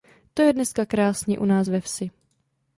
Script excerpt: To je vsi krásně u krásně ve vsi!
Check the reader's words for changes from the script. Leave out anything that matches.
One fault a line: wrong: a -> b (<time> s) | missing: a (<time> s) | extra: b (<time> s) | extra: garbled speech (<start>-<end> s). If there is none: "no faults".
wrong: vsi -> dneska (0.5 s)
wrong: krásně -> nás (1.4 s)